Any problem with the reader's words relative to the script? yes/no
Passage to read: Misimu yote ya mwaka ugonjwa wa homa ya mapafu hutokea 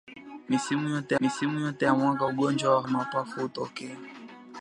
yes